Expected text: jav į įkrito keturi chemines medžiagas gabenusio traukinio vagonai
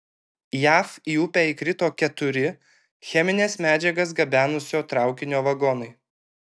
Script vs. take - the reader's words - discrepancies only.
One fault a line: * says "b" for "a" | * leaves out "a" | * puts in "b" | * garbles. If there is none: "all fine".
* puts in "upę"